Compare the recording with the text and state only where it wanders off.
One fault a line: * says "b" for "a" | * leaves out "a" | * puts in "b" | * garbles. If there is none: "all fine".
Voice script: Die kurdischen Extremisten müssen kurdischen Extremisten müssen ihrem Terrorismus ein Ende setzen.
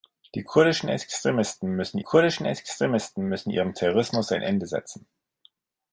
all fine